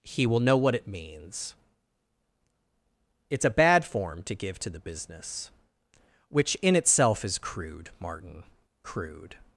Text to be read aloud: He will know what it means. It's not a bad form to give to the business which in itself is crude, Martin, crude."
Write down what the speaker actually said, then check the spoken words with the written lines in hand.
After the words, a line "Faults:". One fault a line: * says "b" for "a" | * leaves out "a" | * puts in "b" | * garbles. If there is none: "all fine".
He will know what it means. It's a bad form to give to the business which in itself is crude, Martin, crude."
Faults:
* leaves out "not"